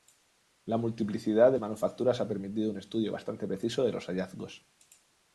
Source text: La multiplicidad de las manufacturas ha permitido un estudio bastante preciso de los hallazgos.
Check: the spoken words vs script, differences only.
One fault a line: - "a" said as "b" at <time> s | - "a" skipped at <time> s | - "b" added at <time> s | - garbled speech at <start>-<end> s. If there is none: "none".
- "las" skipped at 1.6 s